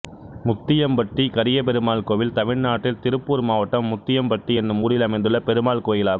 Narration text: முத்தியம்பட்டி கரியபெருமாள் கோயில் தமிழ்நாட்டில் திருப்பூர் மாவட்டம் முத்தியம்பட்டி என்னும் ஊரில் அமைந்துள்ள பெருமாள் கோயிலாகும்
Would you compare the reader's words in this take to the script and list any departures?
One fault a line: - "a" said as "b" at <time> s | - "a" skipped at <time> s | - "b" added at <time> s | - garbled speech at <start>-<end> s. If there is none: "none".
none